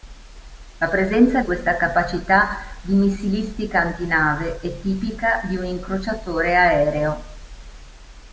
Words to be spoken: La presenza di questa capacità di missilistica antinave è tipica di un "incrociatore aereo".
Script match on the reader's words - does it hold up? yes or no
no